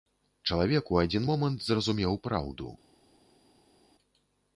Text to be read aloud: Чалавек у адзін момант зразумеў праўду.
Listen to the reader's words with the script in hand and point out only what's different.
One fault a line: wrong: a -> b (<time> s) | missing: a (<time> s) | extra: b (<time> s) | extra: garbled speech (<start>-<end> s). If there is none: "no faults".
no faults